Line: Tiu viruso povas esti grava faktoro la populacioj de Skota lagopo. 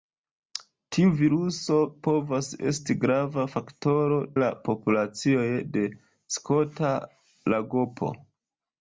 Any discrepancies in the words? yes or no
no